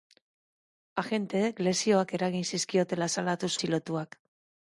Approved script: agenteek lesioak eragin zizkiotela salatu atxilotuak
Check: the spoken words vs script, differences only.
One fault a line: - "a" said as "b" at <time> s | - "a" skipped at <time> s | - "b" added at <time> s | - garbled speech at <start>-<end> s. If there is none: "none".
none